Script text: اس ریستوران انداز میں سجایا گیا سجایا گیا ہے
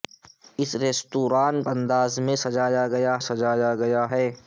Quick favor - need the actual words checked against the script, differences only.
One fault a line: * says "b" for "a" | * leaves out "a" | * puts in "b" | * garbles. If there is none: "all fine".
all fine